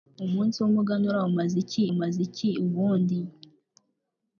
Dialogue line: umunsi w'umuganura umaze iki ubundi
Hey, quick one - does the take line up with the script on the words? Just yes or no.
no